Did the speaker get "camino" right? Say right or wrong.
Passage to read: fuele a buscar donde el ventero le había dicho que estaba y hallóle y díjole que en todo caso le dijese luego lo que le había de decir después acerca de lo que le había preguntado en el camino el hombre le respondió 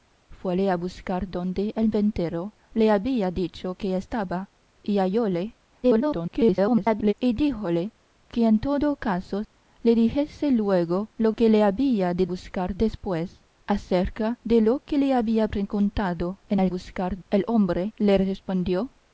wrong